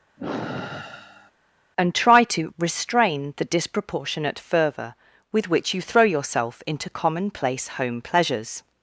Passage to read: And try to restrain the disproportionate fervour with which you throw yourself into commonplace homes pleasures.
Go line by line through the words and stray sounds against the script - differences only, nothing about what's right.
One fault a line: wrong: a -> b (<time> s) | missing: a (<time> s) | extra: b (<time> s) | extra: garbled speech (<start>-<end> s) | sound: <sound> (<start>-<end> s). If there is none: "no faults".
sound: sigh (0.2-1.3 s)
wrong: homes -> home (7.7 s)